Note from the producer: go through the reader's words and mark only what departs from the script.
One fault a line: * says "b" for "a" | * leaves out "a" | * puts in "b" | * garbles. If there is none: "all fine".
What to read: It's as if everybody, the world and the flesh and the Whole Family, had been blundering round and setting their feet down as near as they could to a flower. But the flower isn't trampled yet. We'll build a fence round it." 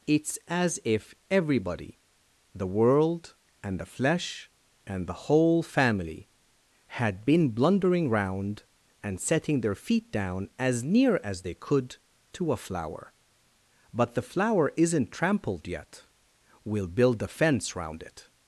all fine